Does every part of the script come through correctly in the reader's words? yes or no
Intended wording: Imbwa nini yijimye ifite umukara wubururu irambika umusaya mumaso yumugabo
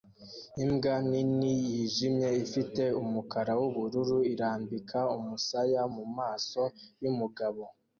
yes